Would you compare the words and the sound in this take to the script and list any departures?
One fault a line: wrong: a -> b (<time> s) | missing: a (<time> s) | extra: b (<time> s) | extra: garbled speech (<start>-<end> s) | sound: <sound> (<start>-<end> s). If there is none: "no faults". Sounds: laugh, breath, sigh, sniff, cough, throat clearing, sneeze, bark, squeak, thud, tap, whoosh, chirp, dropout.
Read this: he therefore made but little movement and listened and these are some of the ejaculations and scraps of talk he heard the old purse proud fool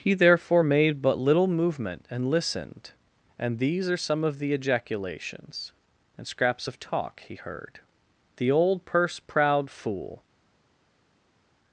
no faults